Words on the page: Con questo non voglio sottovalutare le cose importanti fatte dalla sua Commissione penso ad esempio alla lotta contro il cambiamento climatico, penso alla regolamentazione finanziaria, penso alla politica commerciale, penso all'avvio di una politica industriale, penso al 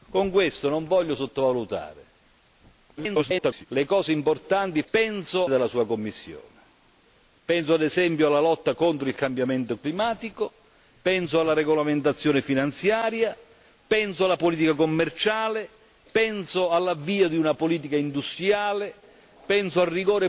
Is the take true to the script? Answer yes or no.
no